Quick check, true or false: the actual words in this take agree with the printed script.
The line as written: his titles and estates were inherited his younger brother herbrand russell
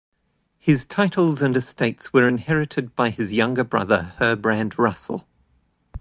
false